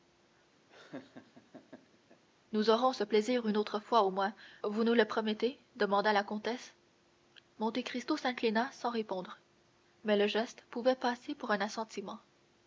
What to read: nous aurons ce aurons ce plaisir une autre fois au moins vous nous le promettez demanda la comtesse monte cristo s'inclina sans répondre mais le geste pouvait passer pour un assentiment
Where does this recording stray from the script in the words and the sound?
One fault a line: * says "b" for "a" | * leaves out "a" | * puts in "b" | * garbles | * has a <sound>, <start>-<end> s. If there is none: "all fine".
* has a laugh, 0.7-2.2 s
* leaves out "aurons ce"